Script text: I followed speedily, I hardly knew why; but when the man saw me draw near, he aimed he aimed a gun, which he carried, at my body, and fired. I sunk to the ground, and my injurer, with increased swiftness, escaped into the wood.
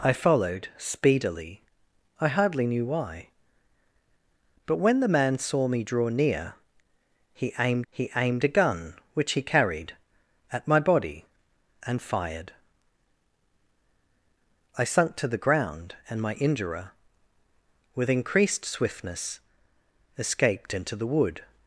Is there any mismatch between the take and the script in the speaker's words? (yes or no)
no